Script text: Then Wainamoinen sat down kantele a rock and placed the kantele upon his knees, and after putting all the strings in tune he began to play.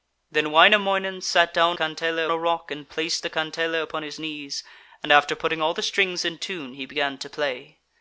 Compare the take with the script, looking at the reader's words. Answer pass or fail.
pass